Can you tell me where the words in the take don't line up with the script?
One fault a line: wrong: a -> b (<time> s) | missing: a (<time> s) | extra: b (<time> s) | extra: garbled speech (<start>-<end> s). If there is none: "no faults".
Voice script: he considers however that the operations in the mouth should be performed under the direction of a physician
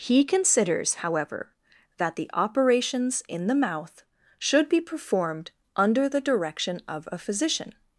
no faults